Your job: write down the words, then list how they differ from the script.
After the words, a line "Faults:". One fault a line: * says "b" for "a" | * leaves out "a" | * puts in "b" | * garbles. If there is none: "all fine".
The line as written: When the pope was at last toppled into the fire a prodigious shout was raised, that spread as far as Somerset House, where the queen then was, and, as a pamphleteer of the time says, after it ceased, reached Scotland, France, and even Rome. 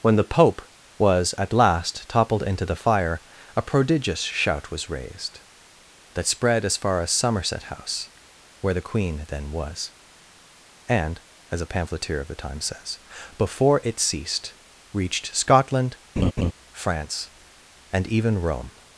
When the pope was at last toppled into the fire a prodigious shout was raised, that spread as far as Somerset House, where the queen then was, and, as a pamphleteer of the time says, before it ceased, reached Scotland, France, and even Rome.
Faults:
* says "before" for "after"